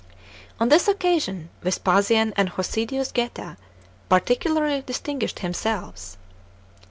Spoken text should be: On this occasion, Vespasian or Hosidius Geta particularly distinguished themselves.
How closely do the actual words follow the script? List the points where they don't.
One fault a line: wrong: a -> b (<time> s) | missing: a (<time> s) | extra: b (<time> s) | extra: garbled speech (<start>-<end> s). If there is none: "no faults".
wrong: or -> and (2.4 s)